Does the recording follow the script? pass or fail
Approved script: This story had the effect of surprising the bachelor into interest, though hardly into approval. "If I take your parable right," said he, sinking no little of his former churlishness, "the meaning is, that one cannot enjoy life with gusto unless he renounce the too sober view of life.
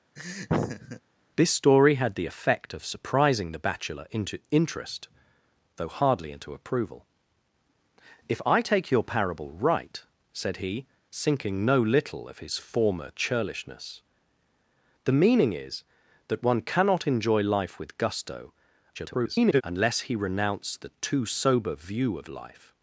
fail